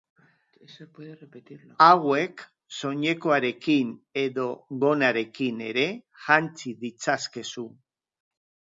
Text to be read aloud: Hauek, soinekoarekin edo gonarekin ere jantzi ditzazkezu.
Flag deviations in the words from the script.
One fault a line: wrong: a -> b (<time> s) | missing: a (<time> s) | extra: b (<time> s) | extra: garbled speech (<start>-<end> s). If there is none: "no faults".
no faults